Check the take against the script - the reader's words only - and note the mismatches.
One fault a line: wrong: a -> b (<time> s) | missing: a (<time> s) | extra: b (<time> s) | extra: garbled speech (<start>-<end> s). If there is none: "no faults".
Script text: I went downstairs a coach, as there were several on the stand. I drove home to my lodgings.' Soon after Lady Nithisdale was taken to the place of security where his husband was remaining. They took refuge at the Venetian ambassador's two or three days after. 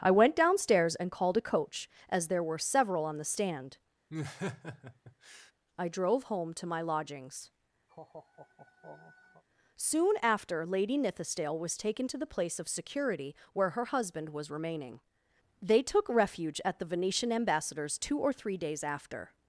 extra: and called (0.9 s)
wrong: his -> her (13.7 s)